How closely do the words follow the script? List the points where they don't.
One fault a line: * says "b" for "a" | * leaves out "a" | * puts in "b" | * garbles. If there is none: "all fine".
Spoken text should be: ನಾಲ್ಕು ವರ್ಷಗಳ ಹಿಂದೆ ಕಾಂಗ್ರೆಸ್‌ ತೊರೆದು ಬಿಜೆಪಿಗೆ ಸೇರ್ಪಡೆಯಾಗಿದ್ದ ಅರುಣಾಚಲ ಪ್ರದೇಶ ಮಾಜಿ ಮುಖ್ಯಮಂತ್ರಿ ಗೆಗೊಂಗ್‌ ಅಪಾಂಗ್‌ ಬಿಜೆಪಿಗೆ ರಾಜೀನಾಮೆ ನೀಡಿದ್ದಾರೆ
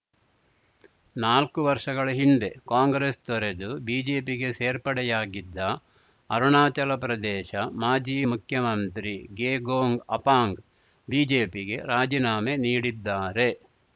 all fine